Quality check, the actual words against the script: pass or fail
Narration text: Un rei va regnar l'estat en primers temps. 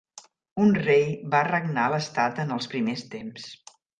fail